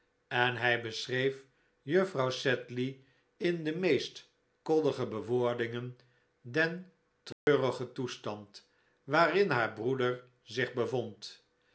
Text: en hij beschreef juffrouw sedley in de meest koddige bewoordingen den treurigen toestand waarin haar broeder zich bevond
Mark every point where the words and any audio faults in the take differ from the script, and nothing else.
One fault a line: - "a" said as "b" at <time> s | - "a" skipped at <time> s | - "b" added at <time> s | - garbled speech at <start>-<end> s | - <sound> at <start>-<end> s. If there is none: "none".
- dropout at 7.3-7.5 s